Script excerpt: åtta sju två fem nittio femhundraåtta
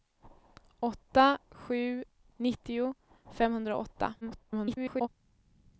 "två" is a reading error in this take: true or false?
true